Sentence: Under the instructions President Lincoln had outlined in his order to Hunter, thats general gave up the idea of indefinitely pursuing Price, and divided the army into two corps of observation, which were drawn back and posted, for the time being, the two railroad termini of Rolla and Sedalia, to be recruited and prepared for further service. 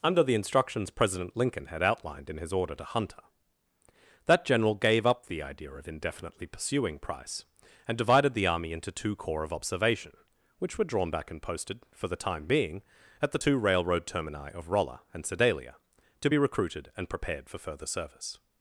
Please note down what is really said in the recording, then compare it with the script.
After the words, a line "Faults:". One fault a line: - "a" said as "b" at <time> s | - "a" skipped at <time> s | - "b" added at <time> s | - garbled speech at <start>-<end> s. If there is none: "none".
Under the instructions President Lincoln had outlined in his order to Hunter, that general gave up the idea of indefinitely pursuing Price, and divided the army into two corps of observation, which were drawn back and posted, for the time being, at the two railroad termini of Rolla and Sedalia, to be recruited and prepared for further service.
Faults:
- "thats" said as "that" at 4.2 s
- "at" added at 13.2 s